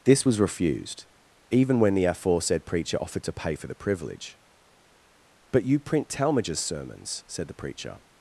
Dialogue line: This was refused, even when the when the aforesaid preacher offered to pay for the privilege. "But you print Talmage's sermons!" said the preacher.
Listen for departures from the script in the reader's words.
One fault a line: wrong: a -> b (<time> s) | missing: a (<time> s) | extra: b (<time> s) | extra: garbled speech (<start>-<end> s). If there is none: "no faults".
missing: when the (2.0 s)